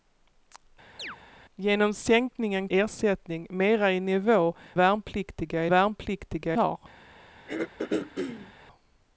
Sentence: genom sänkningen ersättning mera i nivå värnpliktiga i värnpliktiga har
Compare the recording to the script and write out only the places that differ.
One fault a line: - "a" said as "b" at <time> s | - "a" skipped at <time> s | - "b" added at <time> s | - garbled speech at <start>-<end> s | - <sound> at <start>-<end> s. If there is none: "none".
- chirp at 1.0-1.2 s
- throat clearing at 7.5-8.5 s